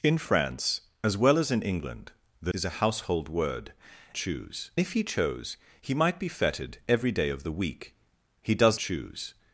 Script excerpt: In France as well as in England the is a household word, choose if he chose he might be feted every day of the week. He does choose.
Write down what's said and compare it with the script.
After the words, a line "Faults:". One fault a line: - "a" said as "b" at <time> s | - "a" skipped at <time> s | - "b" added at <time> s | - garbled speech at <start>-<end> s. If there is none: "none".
In France as well as in England the is a household word, choose if he chose he might be feted every day of the week. He does choose.
Faults:
none